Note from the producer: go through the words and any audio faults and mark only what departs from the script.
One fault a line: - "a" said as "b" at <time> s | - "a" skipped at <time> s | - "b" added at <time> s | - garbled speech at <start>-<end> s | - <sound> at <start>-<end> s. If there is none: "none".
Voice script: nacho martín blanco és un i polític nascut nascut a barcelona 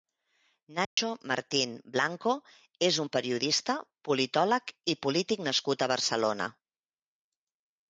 - dropout at 0.8-1.0 s
- "periodista politòleg" added at 3.2 s
- "nascut" skipped at 5.9 s